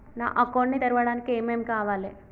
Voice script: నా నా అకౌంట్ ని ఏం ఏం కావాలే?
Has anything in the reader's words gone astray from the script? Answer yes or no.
yes